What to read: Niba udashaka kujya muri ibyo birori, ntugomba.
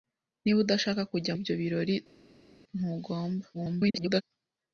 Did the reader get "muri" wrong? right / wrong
wrong